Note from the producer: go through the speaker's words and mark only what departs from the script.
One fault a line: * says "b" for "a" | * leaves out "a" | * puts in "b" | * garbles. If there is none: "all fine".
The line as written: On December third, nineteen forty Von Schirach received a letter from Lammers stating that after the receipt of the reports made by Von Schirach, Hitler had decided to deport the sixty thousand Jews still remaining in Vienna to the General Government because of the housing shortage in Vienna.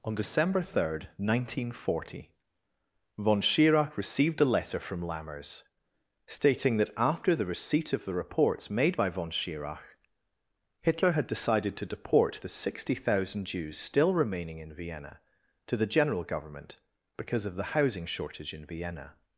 all fine